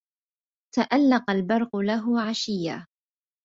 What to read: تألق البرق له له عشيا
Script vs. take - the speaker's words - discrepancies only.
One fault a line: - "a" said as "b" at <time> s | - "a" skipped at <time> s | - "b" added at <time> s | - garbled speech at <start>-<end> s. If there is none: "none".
- "له" skipped at 2.2 s